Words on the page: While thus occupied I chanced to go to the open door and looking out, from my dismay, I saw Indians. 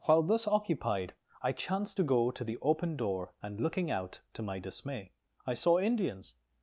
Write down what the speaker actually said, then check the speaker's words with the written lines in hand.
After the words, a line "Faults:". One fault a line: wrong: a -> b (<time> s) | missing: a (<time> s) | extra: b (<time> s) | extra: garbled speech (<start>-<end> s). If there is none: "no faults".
While thus occupied I chanced to go to the open door and looking out, to my dismay, I saw Indians.
Faults:
wrong: from -> to (4.3 s)